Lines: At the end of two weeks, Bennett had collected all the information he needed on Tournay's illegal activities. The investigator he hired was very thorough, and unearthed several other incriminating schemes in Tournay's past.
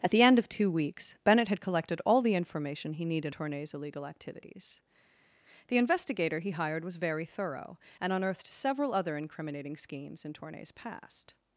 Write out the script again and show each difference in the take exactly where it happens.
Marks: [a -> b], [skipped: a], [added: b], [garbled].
At the end of two weeks, Bennett had collected all the information he needed [skipped: on] Tournay's illegal activities. The investigator he hired was very thorough, and unearthed several other incriminating schemes in Tournay's past.